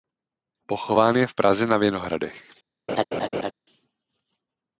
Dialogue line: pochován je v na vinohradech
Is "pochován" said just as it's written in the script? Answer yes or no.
yes